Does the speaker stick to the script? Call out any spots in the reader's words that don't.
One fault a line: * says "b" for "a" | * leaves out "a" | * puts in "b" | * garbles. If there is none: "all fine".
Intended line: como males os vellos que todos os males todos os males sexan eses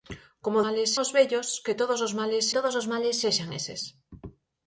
all fine